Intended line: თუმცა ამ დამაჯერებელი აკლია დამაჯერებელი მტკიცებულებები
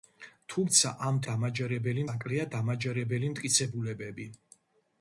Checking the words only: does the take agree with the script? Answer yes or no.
yes